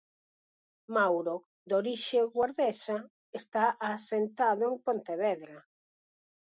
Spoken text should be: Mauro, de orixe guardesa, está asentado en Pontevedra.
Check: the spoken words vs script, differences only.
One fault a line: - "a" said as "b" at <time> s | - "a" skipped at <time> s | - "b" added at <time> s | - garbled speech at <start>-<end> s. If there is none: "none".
none